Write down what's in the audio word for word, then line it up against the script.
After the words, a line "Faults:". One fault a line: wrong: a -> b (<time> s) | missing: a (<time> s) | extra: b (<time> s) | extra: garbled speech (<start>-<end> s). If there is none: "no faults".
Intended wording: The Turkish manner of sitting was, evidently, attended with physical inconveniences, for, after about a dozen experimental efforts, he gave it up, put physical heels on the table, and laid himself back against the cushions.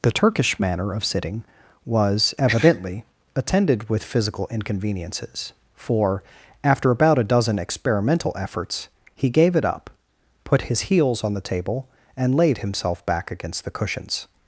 The Turkish manner of sitting was, evidently, attended with physical inconveniences, for, after about a dozen experimental efforts, he gave it up, put his heels on the table, and laid himself back against the cushions.
Faults:
wrong: physical -> his (10.6 s)